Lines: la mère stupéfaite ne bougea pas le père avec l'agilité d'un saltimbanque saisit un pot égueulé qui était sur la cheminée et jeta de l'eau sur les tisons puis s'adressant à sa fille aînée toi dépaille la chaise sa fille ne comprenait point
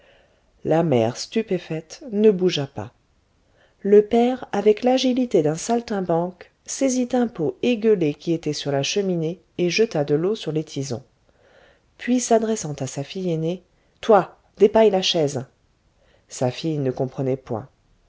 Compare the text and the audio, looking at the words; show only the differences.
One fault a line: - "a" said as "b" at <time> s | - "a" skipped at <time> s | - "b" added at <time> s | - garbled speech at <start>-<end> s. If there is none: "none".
none